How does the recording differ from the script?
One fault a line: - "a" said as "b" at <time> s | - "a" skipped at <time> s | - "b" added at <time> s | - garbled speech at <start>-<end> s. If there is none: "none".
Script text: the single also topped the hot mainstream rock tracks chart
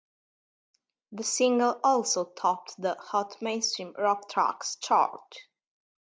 none